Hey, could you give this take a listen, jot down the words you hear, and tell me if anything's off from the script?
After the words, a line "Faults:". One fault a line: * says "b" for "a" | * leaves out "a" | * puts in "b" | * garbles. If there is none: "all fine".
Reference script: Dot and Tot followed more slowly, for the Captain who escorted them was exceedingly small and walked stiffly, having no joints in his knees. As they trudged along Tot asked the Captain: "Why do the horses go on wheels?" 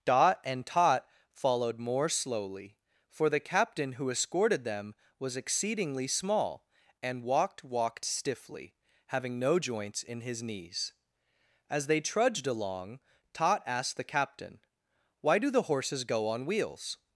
Dot and Tot followed more slowly, for the Captain who escorted them was exceedingly small and walked walked stiffly, having no joints in his knees. As they trudged along Tot asked the Captain: "Why do the horses go on wheels?"
Faults:
* puts in "walked"